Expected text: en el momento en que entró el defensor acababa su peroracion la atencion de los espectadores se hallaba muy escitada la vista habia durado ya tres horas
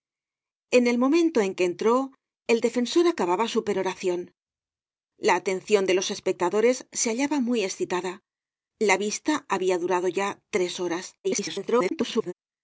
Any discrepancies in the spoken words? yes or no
yes